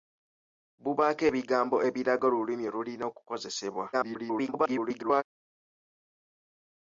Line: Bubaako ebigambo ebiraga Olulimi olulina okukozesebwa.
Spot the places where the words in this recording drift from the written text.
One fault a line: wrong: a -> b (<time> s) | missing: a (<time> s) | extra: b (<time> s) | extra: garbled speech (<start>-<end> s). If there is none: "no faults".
extra: garbled speech (3.9-5.2 s)